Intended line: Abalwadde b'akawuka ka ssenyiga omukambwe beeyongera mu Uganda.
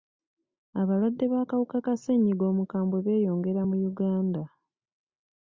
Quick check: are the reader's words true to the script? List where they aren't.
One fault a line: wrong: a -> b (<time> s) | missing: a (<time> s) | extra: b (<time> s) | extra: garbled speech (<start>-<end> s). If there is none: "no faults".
no faults